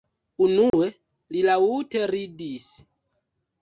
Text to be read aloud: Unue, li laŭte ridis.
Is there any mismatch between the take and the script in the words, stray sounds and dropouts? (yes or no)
yes